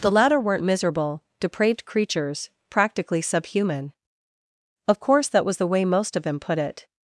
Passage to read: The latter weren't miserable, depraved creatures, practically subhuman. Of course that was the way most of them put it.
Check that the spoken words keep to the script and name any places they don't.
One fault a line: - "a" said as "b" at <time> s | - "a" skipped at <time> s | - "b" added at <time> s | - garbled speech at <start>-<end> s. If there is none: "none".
none